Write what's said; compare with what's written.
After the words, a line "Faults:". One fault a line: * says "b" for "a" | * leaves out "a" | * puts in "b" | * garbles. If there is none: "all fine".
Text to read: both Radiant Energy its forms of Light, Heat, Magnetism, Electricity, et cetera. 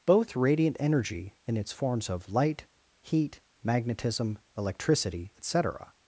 both Radiant Energy in its forms of Light, Heat, Magnetism, Electricity, et cetera.
Faults:
* puts in "in"